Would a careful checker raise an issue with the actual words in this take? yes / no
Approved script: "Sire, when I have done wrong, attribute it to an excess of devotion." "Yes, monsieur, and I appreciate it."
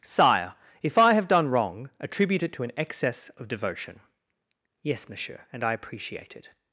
yes